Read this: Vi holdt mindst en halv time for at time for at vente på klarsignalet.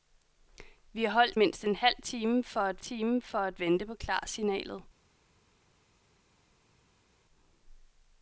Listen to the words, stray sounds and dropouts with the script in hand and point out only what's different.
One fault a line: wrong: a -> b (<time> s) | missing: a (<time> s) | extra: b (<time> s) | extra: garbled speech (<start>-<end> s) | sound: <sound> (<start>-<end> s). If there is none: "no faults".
no faults